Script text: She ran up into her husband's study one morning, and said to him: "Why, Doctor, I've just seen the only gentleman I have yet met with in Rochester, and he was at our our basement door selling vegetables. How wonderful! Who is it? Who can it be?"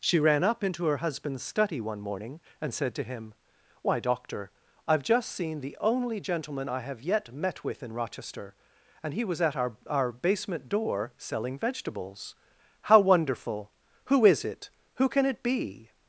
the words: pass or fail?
pass